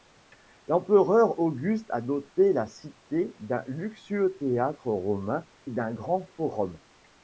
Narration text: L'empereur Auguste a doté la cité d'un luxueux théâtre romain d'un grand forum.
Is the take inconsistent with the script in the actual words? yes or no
no